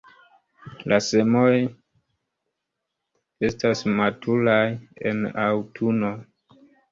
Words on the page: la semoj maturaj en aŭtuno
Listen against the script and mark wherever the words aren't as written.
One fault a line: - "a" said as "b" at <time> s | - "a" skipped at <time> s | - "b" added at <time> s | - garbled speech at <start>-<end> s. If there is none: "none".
- "estas" added at 3.5 s